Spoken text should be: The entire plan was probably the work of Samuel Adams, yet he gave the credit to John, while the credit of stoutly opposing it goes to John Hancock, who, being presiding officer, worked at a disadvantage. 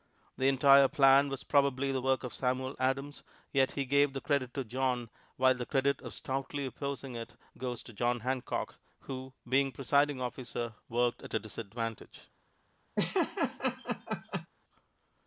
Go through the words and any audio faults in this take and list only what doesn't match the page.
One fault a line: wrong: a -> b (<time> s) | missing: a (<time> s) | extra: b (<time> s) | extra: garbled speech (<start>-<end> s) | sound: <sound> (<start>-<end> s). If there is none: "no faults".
sound: laugh (13.0-14.5 s)